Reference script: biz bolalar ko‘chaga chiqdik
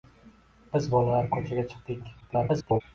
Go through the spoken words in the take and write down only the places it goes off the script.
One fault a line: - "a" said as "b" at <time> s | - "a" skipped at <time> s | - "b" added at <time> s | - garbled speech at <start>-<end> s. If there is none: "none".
- garbled speech at 2.2-2.8 s